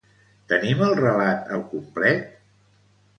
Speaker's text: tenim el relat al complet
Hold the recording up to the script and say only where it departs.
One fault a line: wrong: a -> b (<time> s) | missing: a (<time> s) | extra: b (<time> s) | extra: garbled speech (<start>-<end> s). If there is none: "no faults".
no faults